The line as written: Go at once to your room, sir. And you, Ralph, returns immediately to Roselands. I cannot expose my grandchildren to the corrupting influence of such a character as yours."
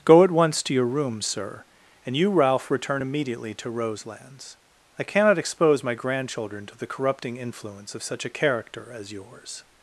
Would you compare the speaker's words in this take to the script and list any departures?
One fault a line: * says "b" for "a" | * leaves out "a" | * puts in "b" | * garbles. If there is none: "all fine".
* says "return" for "returns"